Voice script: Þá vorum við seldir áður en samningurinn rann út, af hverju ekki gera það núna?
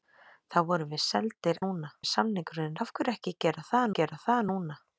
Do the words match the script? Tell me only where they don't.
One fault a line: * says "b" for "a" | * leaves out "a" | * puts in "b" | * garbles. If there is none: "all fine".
* says "núna" for "áður"
* leaves out "rann út"
* puts in "gera það"